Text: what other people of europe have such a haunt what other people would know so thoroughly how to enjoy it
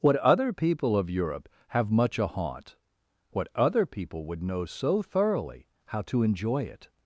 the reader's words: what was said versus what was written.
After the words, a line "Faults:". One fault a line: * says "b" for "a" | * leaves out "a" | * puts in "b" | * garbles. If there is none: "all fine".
what other people of europe have much a haunt what other people would know so thoroughly how to enjoy it
Faults:
* says "much" for "such"